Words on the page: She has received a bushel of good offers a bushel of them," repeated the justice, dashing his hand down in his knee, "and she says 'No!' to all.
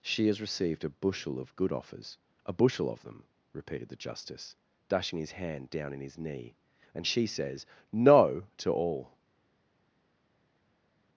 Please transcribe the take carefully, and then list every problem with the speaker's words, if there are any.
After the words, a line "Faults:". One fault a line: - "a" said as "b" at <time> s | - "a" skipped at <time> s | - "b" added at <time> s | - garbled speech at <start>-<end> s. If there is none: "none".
She has received a bushel of good offers a bushel of them," repeated the justice, dashing his hand down in his knee, "and she says 'No!' to all.
Faults:
none